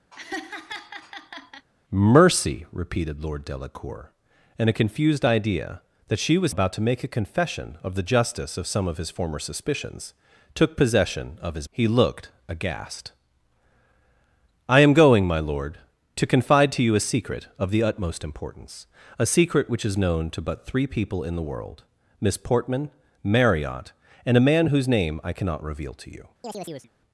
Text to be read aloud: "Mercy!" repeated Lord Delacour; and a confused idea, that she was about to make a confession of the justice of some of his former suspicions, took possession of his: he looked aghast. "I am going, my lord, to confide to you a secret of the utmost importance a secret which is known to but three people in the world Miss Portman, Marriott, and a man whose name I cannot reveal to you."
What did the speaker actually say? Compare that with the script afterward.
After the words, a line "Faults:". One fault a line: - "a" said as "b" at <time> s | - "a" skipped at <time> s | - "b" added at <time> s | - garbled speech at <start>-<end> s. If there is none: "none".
"Mercy!" repeated Lord Delacour; and a confused idea, that she was about to make a confession of the justice of some of his former suspicions, took possession of his: he looked aghast. "I am going, my lord, to confide to you a secret of the utmost importance a secret which is known to but three people in the world Miss Portman, Marriott, and a man whose name I cannot reveal to you."
Faults:
none